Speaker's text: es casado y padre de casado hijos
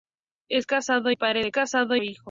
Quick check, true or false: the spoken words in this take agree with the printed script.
true